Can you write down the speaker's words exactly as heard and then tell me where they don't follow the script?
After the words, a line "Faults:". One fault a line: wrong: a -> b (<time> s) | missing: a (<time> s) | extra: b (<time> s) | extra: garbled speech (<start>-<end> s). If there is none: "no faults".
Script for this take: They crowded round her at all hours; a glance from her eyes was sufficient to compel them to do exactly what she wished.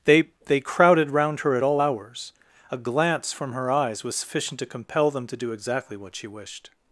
They they crowded round her at all hours; a glance from her eyes was sufficient to compel them to do exactly what she wished.
Faults:
extra: they (0.5 s)